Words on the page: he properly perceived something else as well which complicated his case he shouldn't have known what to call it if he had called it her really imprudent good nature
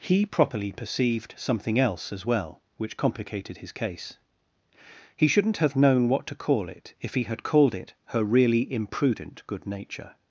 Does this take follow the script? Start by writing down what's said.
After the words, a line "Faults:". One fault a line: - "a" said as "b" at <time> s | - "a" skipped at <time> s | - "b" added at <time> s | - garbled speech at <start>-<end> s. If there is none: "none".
he properly perceived something else as well which complicated his case he shouldn't have known what to call it if he had called it her really imprudent good nature
Faults:
none